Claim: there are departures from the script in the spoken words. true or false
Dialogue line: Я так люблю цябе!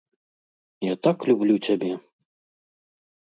false